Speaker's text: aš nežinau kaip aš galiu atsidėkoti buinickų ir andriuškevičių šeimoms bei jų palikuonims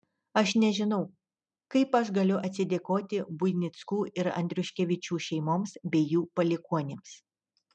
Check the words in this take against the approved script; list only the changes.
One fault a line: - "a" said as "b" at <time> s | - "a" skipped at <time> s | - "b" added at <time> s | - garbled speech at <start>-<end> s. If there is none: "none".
none